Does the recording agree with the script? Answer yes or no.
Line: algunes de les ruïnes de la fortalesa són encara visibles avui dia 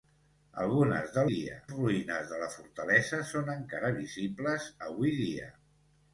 no